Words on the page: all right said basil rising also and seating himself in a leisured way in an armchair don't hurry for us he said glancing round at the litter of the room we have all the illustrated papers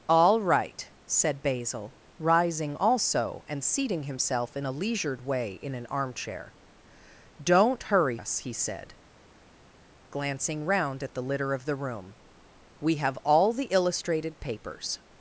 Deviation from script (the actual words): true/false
true